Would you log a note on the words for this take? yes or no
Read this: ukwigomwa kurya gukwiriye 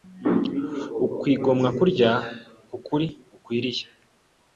yes